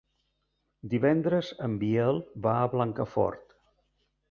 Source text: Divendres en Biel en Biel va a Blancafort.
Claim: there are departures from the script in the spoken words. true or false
true